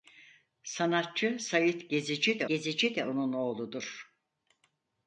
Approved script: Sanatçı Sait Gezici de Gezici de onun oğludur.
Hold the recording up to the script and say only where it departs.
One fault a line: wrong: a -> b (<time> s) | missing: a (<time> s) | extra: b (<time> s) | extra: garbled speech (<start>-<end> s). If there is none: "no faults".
no faults